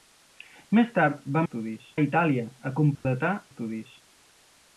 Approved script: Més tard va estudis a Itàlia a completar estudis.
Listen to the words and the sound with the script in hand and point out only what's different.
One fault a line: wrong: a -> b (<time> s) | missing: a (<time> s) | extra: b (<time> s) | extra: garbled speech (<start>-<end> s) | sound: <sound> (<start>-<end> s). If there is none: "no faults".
sound: dropout (2.9-3.1 s)